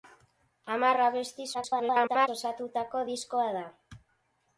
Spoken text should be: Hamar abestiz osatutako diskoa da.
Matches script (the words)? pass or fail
fail